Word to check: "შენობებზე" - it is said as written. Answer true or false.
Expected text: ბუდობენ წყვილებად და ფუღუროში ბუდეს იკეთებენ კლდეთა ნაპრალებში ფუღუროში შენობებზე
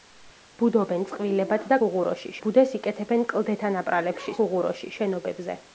true